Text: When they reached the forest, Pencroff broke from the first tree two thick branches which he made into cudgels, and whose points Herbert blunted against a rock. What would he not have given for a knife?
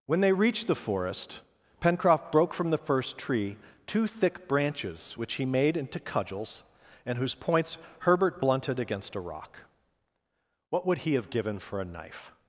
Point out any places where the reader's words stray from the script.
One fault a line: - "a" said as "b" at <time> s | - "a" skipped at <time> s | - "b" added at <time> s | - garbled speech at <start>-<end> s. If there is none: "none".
- "not" skipped at 11.1 s